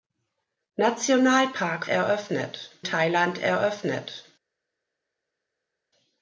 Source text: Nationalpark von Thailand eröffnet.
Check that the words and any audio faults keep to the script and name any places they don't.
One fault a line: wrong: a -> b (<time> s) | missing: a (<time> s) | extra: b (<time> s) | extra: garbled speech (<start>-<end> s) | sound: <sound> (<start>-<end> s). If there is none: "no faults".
wrong: von -> eröffnet (1.8 s)